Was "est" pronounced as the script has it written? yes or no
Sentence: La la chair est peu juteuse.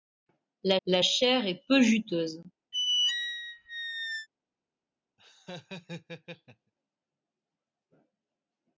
yes